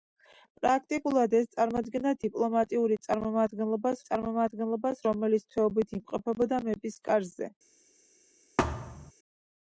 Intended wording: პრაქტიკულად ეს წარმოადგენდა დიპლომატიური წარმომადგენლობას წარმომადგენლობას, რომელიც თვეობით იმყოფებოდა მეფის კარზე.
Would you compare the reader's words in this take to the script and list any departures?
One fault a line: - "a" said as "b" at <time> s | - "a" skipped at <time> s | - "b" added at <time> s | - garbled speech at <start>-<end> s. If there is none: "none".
none